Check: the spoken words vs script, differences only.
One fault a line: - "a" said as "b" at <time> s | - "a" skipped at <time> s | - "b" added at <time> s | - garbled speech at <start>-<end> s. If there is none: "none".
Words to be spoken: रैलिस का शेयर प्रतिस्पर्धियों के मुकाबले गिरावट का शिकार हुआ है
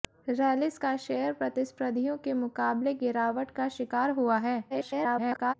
- garbled speech at 4.7-5.5 s